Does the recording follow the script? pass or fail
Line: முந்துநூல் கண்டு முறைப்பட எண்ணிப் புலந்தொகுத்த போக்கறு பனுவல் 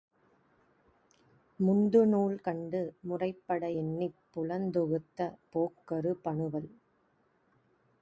pass